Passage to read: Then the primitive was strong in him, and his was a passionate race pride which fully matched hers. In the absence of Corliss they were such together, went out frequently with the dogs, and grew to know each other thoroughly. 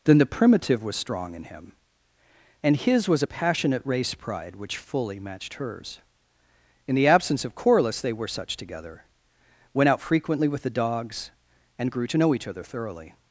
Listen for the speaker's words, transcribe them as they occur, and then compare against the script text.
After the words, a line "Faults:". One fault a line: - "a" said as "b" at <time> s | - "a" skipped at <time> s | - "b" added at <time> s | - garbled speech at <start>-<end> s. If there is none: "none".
Then the primitive was strong in him, and his was a passionate race pride which fully matched hers. In the absence of Corliss they were such together, went out frequently with the dogs, and grew to know each other thoroughly.
Faults:
none